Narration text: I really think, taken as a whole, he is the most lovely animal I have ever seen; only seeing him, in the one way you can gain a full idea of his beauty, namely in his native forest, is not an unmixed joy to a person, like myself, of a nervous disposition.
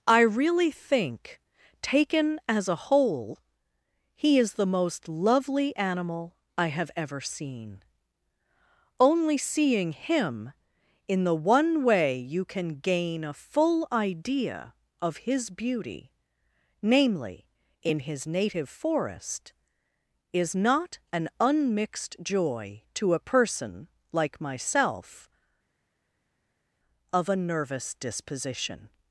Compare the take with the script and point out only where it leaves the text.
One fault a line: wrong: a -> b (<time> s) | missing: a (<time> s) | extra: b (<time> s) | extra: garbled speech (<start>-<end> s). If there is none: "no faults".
no faults